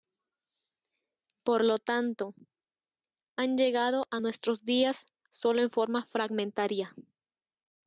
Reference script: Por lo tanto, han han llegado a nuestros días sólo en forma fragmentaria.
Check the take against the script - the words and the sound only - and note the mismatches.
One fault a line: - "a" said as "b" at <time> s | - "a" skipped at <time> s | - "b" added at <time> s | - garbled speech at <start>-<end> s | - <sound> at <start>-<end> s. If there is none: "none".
- "han" skipped at 3.6 s